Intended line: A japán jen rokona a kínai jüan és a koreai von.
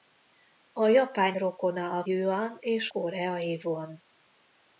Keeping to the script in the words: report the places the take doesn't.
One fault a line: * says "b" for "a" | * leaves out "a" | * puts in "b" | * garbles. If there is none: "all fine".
* leaves out "jen"
* leaves out "kínai"
* leaves out "a"